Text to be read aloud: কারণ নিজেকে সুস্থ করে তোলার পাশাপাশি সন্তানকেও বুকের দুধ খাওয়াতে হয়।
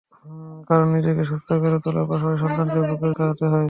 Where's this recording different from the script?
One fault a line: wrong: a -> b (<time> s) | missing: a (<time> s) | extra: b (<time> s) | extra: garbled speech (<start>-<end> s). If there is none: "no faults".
missing: দুধ (3.1 s)